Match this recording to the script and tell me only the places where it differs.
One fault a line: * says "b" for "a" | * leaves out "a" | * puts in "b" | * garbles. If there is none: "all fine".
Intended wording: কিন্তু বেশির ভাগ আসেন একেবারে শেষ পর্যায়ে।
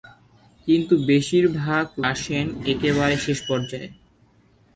all fine